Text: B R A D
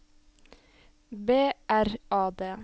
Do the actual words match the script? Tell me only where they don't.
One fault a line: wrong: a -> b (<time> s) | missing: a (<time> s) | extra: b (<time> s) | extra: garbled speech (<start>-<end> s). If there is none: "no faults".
no faults